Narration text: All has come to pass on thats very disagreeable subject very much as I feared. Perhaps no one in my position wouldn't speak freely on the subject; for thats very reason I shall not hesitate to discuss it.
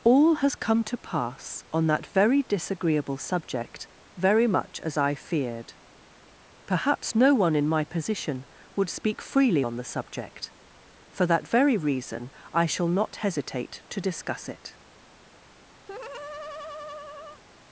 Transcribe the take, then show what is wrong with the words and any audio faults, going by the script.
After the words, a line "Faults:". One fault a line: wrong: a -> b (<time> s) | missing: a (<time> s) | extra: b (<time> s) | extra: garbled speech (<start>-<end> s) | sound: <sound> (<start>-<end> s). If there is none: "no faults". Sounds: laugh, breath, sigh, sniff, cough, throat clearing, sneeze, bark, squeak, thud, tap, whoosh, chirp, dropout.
All has come to pass on that very disagreeable subject very much as I feared. Perhaps no one in my position would speak freely on the subject; for that very reason I shall not hesitate to discuss it.
Faults:
wrong: thats -> that (1.9 s)
wrong: wouldn't -> would (8.8 s)
wrong: thats -> that (11.3 s)
sound: laugh (15.9-17.4 s)